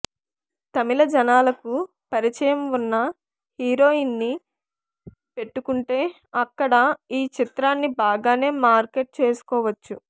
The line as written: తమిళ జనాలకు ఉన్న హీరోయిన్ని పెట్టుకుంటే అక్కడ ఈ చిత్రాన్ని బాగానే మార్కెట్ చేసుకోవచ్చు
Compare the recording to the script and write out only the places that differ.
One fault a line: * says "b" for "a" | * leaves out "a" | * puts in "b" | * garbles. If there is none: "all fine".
* puts in "పరిచయం"